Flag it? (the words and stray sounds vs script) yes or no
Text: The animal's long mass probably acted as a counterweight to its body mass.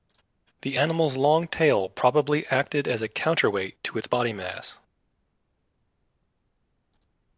yes